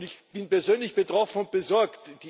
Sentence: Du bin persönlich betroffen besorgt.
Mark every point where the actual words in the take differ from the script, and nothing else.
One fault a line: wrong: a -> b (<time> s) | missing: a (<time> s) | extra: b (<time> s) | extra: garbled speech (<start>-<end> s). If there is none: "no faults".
wrong: Du -> Ich (0.0 s)
extra: und (1.4 s)